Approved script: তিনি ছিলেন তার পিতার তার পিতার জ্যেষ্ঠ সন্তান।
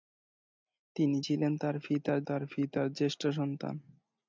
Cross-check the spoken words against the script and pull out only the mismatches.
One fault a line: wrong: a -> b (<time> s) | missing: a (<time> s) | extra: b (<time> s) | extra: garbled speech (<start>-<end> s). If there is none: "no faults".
no faults